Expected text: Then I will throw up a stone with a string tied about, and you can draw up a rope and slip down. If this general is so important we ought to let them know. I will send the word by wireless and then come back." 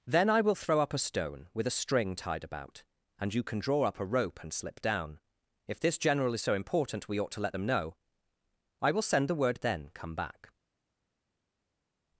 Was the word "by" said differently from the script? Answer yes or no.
yes